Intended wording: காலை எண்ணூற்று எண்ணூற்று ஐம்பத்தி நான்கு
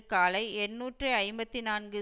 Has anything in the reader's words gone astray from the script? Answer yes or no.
yes